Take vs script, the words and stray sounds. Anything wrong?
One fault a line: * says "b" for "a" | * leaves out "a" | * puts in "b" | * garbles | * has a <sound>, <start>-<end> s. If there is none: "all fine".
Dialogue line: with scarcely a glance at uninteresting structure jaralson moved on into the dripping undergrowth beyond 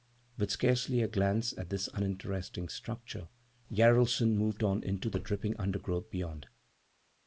* puts in "this"